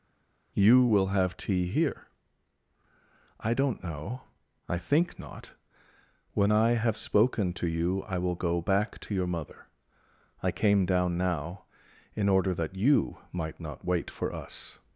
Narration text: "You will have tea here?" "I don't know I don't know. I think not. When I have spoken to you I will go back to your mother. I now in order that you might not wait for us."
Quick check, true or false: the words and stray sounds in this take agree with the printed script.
false